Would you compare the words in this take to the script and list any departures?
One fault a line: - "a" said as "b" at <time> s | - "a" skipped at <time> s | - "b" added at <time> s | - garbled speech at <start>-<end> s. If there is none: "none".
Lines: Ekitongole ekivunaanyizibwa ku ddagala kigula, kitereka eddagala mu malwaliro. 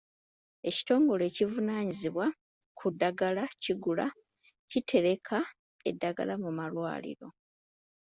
none